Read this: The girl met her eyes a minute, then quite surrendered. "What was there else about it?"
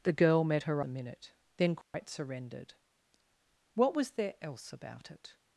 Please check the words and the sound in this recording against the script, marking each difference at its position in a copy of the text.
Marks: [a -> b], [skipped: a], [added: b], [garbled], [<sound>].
The girl met her [skipped: eyes] a minute, then quite [dropout] surrendered. "What was there else about it?"